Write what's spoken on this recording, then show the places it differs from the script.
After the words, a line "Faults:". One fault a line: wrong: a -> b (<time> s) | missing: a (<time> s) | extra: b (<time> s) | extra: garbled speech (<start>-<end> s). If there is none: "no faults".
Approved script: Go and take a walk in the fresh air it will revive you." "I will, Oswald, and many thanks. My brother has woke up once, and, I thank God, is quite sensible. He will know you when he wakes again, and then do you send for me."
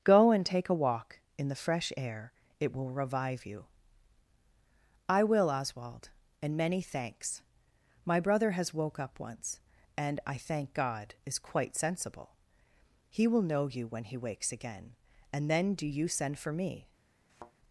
Go and take a walk in the fresh air it will revive you." "I will, Oswald, and many thanks. My brother has woke up once, and, I thank God, is quite sensible. He will know you when he wakes again, and then do you send for me."
Faults:
no faults